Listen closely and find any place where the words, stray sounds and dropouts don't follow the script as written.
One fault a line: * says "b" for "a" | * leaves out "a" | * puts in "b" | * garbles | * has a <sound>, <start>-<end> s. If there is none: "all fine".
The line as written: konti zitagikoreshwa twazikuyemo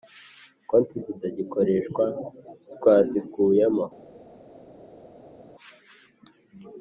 all fine